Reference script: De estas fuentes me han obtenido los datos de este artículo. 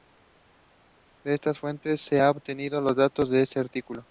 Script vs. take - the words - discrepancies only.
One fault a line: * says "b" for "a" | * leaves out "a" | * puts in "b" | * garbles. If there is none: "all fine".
* says "se" for "me"